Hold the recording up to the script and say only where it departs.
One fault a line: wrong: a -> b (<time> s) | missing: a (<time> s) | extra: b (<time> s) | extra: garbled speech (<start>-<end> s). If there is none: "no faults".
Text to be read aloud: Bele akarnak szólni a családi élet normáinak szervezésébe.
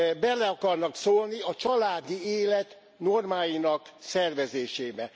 no faults